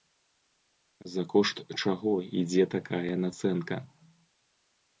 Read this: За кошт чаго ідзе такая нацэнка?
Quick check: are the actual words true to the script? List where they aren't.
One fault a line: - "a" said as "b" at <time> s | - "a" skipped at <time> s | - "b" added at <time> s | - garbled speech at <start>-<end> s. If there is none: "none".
none